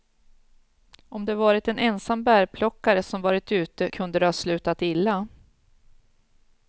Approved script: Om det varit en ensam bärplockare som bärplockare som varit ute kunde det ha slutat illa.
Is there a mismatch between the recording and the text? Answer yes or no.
yes